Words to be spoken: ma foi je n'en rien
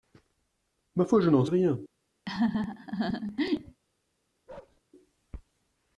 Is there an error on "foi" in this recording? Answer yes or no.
no